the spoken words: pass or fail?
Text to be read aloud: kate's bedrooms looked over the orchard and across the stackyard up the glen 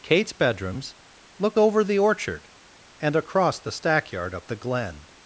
pass